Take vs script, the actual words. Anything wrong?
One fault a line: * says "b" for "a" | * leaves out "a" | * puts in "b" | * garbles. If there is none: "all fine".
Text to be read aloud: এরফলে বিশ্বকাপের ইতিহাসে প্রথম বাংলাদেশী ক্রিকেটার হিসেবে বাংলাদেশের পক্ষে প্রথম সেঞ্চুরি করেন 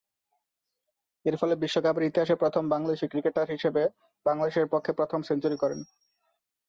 all fine